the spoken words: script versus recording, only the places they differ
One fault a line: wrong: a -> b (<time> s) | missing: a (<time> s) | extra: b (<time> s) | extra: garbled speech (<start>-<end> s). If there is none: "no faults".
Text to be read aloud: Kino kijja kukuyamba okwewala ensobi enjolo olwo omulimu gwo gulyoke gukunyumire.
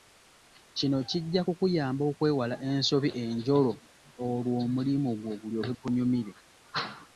no faults